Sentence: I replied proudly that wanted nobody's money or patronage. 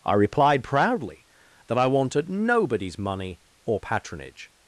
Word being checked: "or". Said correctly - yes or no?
yes